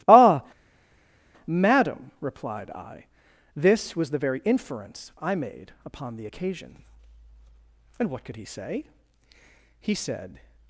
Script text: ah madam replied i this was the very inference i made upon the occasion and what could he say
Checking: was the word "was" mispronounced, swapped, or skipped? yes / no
no